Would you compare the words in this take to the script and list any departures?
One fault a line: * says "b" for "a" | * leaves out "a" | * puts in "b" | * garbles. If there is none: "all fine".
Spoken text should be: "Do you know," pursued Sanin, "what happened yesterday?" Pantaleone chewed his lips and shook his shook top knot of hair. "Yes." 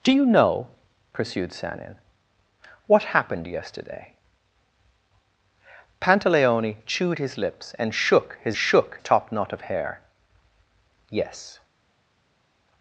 all fine